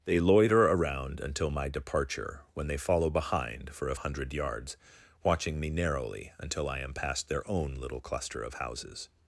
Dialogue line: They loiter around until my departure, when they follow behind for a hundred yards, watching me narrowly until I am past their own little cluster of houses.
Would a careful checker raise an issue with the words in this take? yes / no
no